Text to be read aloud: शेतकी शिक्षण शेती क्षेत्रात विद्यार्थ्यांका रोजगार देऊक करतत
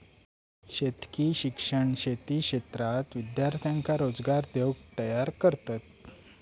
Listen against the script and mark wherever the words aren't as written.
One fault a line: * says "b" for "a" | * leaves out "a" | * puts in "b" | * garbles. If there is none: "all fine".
* puts in "तयार"